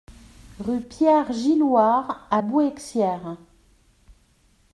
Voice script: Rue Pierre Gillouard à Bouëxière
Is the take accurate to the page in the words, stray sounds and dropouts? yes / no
yes